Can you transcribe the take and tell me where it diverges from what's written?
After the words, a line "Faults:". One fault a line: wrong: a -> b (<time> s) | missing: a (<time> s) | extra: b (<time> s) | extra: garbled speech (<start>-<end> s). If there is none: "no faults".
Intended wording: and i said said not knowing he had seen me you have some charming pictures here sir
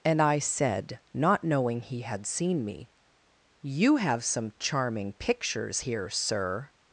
and i said not knowing he had seen me you have some charming pictures here sir
Faults:
missing: said (1.0 s)